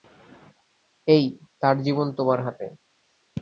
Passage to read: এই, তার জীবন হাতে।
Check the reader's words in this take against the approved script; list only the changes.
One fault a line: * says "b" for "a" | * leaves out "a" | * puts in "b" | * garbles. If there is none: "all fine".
* puts in "তোমার"